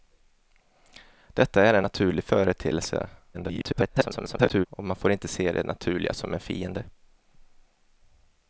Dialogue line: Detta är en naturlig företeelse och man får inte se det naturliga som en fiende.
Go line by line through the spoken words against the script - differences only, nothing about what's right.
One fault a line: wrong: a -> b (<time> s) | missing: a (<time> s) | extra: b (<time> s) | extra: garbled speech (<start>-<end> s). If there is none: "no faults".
extra: garbled speech (3.3-4.7 s)